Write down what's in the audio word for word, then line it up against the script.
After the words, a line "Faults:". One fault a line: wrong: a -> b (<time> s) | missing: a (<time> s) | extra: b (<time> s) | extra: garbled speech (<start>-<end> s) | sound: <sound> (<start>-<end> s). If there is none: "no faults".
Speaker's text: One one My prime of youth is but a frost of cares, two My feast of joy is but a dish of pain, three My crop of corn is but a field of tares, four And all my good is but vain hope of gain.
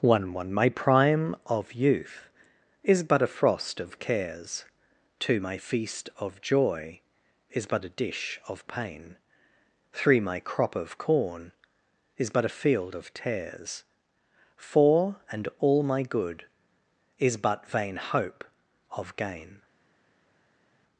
One one My prime of youth is but a frost of cares, two My feast of joy is but a dish of pain, three My crop of corn is but a field of tares, four And all my good is but vain hope of gain.
Faults:
no faults